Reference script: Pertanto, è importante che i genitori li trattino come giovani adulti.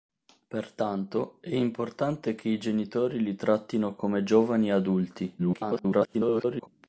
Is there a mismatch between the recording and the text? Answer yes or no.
yes